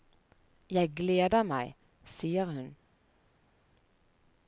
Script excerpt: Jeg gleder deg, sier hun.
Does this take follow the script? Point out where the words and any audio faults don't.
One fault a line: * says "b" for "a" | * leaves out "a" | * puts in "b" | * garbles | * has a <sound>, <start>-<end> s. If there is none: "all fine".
* says "meg" for "deg"